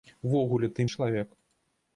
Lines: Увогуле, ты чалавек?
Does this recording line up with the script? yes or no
yes